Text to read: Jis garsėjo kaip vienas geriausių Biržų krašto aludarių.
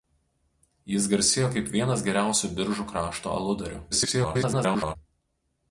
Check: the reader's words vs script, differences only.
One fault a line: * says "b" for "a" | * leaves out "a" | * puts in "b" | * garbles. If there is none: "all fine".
* garbles